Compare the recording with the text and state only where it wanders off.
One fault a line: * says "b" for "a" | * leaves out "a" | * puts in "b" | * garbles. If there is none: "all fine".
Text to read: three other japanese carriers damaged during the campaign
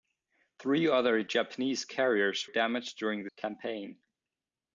all fine